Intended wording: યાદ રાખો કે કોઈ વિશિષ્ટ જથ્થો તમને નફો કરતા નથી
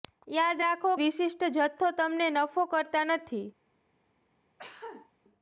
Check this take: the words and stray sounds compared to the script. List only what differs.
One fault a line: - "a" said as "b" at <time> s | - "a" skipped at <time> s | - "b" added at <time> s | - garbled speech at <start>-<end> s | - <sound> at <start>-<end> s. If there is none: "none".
- "કે કોઈ" skipped at 0.9 s
- cough at 4.6-5.1 s